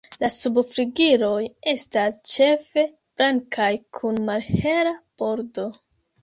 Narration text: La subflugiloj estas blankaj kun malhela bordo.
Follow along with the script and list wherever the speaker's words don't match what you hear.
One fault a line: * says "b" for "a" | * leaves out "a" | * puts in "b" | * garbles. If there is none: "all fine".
* puts in "ĉefe"